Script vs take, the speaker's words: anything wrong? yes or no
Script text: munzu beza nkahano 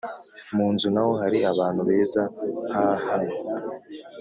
yes